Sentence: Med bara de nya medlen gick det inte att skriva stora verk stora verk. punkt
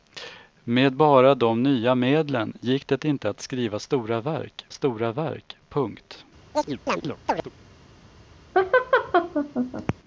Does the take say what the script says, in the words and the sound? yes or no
no